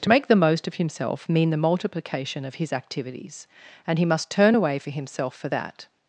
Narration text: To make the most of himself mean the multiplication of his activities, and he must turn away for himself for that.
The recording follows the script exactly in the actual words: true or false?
true